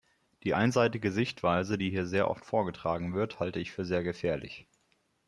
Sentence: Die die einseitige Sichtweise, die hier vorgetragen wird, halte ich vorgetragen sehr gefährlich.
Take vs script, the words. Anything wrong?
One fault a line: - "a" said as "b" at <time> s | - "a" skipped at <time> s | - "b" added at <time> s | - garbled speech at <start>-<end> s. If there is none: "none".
- "die" skipped at 0.6 s
- "sehr oft" added at 2.0 s
- "vorgetragen" said as "für" at 3.7 s